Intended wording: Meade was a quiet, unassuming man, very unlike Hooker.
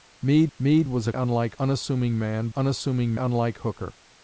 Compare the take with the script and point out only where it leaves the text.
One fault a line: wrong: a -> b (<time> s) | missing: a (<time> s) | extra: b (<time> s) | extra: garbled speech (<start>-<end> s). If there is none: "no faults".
extra: meade (0.6 s)
wrong: quiet -> unlike (1.1 s)
wrong: very -> unassuming (2.5 s)